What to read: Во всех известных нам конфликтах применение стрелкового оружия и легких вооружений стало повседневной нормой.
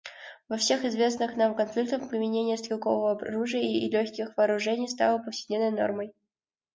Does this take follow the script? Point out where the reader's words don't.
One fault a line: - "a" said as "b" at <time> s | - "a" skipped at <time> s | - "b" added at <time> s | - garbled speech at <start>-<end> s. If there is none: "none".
none